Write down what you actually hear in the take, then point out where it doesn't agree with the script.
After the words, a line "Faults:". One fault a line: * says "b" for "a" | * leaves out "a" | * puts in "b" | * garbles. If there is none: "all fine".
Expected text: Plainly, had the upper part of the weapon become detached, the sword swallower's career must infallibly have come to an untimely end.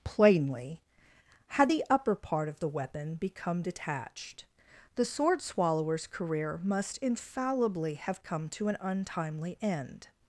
Plainly, had the upper part of the weapon become detached, the sword swallower's career must infallibly have come to an untimely end.
Faults:
all fine